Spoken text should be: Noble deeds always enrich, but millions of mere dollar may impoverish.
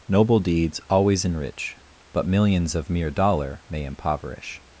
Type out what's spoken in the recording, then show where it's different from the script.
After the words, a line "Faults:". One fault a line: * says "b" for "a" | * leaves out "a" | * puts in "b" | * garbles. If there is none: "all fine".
Noble deeds always enrich, but millions of mere dollar may impoverish.
Faults:
all fine